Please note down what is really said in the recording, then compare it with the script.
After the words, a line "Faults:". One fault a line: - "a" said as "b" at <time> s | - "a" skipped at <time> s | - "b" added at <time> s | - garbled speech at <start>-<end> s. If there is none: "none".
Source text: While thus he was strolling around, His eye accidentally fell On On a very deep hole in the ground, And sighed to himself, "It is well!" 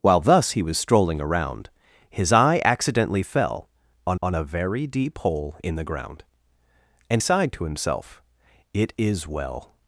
While thus he was strolling around, His eye accidentally fell On On a very deep hole in the ground, And sighed to himself, "It is well!"
Faults:
none